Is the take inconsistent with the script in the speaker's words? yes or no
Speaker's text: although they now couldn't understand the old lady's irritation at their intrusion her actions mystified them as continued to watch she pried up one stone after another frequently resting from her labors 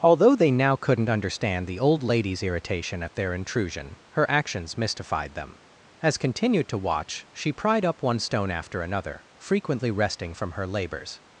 no